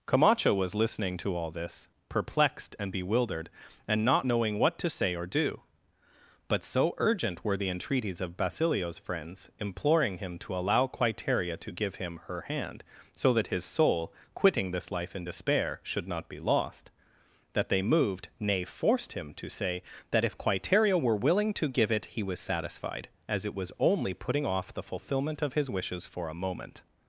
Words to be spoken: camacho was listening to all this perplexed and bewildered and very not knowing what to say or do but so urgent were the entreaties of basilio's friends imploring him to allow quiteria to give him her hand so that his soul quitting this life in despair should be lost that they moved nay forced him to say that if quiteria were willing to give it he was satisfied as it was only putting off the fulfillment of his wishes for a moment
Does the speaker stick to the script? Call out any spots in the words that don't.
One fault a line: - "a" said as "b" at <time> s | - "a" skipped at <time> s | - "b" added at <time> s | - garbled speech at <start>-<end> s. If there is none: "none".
- "very" skipped at 4.0 s
- "not" added at 16.1 s